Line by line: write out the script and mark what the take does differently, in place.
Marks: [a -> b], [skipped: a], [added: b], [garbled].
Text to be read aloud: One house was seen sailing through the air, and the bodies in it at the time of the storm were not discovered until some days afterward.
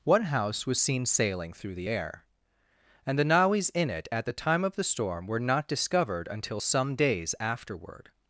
One house was seen sailing through the air, and the [bodies -> nawis] in it at the time of the storm were not discovered until some days afterward.